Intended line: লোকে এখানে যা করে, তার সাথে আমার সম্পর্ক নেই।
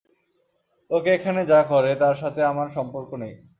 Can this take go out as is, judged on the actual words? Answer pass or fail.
pass